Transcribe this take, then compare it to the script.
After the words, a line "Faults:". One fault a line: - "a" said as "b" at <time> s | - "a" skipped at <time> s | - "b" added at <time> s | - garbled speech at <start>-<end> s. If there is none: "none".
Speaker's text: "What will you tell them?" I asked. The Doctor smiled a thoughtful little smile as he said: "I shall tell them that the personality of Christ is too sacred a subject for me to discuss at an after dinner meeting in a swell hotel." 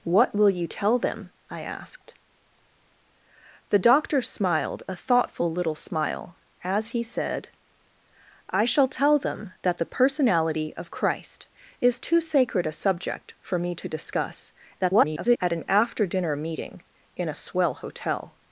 "What will you tell them?" I asked. The Doctor smiled a thoughtful little smile as he said: "I shall tell them that the personality of Christ is too sacred a subject for me to discuss [garbled] at an after dinner meeting in a swell hotel."
Faults:
- garbled speech at 14.8-15.4 s